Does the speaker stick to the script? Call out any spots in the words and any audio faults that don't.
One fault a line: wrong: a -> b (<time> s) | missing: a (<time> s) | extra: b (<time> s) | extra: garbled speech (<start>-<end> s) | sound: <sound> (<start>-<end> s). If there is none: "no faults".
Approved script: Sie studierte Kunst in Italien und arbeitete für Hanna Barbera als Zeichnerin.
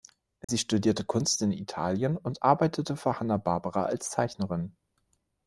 sound: dropout (0.4-0.5 s)